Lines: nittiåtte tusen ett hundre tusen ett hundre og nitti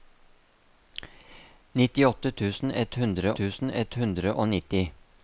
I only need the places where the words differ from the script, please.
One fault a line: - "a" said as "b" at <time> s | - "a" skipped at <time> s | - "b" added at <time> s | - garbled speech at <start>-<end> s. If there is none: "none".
none